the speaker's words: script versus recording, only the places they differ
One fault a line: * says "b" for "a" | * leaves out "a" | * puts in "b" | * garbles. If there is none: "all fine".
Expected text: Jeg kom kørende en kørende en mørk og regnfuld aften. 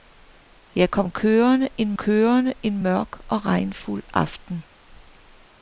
all fine